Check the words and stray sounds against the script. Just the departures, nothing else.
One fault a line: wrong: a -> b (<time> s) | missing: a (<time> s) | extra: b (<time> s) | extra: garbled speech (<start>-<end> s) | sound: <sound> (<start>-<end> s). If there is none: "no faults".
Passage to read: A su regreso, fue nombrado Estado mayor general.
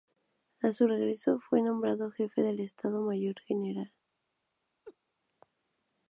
extra: jefe del (2.1 s)
sound: laugh (4.8-5.0 s)